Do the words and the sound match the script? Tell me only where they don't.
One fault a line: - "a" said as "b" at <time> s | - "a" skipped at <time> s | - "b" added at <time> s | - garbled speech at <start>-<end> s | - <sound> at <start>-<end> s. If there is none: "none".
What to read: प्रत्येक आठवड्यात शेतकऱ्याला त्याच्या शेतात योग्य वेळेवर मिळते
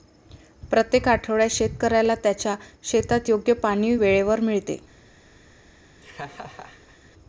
- "पाणी" added at 3.6 s
- laugh at 6.0-7.0 s